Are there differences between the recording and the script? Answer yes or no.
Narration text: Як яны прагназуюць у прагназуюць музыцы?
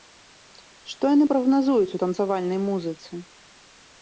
yes